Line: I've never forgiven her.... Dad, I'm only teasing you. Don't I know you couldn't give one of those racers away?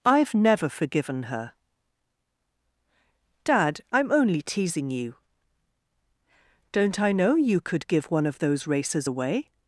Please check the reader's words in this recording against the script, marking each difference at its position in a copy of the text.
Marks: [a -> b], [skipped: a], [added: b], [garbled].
I've never forgiven her.... Dad, I'm only teasing you. Don't I know you [couldn't -> could] give one of those racers away?